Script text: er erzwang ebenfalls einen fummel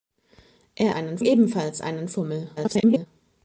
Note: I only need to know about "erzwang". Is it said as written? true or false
false